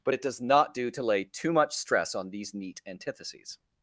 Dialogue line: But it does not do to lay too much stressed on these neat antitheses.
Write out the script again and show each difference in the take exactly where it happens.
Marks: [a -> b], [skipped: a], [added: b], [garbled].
But it does not do to lay too much [stressed -> stress] on these neat antitheses.